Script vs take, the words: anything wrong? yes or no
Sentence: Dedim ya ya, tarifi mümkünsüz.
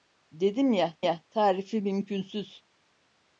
no